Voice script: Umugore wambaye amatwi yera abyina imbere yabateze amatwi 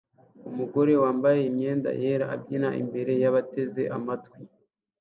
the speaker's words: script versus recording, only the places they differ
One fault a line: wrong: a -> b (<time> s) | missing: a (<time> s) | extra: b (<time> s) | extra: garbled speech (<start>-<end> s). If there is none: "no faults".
wrong: amatwi -> imyenda (1.5 s)